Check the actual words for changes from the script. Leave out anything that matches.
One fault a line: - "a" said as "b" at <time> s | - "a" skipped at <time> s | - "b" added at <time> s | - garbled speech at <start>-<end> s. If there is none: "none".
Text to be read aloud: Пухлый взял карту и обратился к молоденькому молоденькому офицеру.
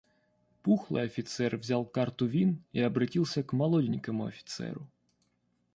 - "офицер" added at 1.0 s
- "вин" added at 2.2 s
- "молоденькому" skipped at 4.2 s